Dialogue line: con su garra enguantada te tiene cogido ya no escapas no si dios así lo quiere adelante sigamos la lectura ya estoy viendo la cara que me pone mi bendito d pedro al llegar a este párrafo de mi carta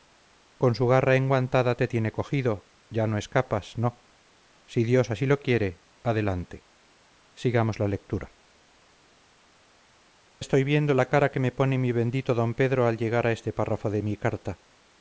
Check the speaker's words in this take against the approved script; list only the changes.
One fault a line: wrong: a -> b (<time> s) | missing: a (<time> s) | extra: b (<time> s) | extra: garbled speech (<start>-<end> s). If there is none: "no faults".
missing: ya (8.3 s)